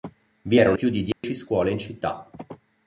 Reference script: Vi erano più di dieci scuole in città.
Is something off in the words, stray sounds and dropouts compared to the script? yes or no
yes